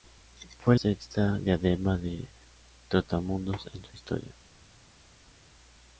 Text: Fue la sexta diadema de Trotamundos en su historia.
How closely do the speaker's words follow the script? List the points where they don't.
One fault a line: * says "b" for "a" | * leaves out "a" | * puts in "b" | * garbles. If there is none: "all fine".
* leaves out "la"